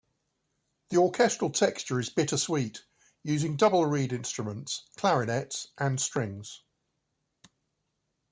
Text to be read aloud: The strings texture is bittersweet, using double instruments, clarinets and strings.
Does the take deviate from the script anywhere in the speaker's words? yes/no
yes